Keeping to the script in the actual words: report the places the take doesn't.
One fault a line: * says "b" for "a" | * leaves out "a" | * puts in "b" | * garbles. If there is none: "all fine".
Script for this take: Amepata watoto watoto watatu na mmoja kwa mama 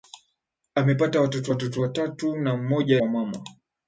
all fine